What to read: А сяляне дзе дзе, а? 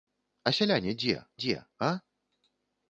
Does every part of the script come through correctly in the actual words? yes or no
yes